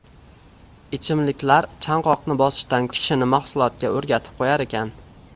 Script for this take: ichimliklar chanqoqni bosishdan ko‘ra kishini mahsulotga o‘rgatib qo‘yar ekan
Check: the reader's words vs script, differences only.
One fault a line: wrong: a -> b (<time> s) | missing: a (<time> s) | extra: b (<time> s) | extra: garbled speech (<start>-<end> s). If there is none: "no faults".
missing: ko‘ra (2.9 s)